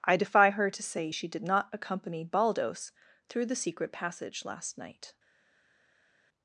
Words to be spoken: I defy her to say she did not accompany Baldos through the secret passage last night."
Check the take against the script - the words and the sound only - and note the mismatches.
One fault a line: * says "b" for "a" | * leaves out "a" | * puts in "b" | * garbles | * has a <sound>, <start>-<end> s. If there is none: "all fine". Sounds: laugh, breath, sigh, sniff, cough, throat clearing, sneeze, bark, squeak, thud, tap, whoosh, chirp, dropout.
all fine